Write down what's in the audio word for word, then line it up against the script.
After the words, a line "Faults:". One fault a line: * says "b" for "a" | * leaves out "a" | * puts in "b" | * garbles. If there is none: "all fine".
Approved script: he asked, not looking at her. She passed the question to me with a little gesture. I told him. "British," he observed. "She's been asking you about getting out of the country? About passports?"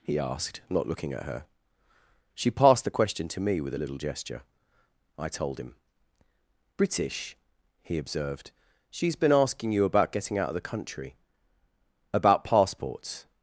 he asked, not looking at her. She passed the question to me with a little gesture. I told him. "British," he observed. "She's been asking you about getting out of the country? About passports?"
Faults:
all fine